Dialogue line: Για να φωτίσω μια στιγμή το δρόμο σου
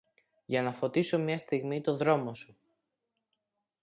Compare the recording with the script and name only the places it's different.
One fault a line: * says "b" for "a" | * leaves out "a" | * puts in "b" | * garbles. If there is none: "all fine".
all fine